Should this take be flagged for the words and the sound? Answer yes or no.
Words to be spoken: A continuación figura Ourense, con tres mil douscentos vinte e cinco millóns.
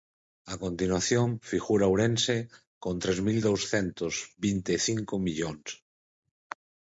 no